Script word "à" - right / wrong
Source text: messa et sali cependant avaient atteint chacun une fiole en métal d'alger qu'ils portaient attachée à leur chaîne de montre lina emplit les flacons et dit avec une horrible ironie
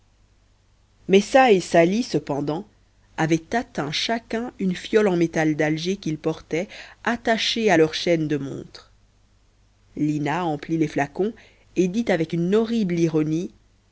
right